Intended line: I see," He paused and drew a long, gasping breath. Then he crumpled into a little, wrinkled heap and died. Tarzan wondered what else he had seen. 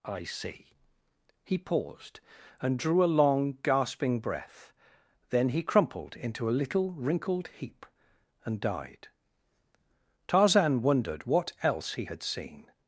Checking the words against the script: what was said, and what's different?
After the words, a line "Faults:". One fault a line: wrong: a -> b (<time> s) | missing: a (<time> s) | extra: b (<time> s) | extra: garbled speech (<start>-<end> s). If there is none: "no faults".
I see," He paused and drew a long, gasping breath. Then he crumpled into a little, wrinkled heap and died. Tarzan wondered what else he had seen.
Faults:
no faults